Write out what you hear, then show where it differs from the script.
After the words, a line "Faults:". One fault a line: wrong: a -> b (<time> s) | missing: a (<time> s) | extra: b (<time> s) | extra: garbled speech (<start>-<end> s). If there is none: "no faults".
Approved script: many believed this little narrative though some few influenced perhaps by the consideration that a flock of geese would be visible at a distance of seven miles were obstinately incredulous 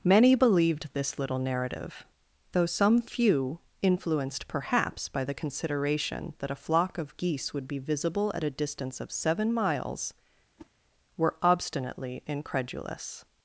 many believed this little narrative though some few influenced perhaps by the consideration that a flock of geese would be visible at a distance of seven miles were obstinately incredulous
Faults:
no faults